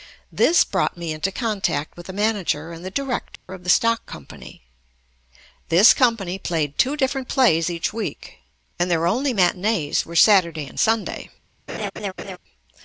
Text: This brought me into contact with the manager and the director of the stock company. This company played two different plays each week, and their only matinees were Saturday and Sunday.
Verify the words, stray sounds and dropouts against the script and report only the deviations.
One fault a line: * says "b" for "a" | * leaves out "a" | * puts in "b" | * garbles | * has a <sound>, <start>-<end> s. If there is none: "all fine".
* has a dropout, 3.4-3.5 s
* has a laugh, 11.7-12.4 s